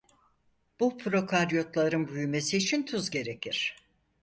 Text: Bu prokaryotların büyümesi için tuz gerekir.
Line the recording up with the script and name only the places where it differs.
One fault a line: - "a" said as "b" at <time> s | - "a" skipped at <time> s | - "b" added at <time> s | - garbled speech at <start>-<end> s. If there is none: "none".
none